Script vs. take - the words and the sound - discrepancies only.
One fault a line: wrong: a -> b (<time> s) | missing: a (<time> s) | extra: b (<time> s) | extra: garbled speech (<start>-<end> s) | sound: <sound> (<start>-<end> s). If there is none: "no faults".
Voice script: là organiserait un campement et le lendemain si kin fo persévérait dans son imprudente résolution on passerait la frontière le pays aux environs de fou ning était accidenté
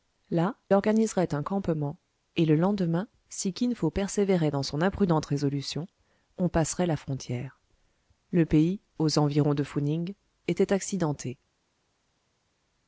no faults